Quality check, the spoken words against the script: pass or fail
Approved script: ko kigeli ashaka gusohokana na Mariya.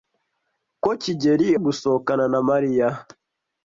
fail